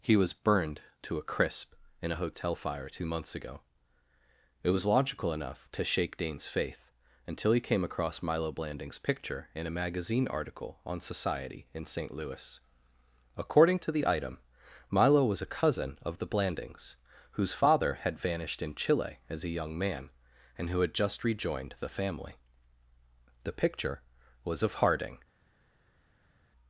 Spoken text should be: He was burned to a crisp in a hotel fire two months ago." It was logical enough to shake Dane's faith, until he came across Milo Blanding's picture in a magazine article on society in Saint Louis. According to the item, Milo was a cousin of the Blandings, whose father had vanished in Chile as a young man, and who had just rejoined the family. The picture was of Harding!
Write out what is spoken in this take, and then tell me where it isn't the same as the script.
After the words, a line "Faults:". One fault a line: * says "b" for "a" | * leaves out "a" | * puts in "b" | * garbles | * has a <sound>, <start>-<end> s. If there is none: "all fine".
He was burned to a crisp in a hotel fire two months ago." It was logical enough to shake Dane's faith, until he came across Milo Blanding's picture in a magazine article on society in Saint Louis. According to the item, Milo was a cousin of the Blandings, whose father had vanished in Chile as a young man, and who had just rejoined the family. The picture was of Harding!
Faults:
all fine